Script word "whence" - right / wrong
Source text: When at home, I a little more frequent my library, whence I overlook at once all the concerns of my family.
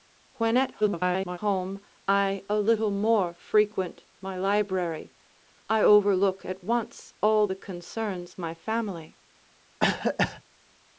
wrong